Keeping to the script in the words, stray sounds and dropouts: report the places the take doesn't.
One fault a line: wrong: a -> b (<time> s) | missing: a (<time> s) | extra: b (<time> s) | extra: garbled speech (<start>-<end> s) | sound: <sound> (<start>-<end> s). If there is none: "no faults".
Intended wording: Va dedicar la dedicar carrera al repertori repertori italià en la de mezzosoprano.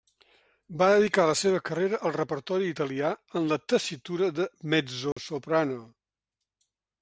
wrong: dedicar -> seva (1.4 s)
missing: repertori (2.7 s)
extra: tessitura (3.7 s)
sound: dropout (5.1-5.2 s)